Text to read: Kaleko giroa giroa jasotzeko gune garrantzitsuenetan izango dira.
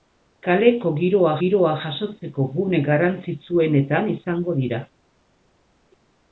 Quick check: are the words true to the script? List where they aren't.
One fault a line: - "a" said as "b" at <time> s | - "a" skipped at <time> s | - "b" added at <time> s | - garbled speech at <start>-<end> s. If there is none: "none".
none